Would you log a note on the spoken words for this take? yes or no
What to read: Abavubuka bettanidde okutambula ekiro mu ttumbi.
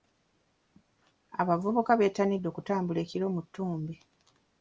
no